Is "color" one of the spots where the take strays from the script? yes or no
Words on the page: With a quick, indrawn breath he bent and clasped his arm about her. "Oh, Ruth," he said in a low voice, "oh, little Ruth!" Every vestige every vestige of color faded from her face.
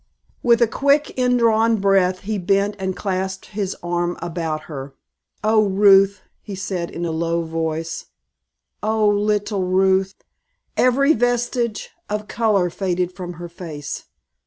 no